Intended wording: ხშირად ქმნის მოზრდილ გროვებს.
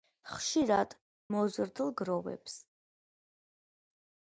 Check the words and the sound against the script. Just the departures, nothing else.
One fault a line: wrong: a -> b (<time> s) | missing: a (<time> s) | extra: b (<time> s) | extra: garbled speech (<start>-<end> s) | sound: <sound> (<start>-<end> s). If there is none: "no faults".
missing: ქმნის (0.9 s)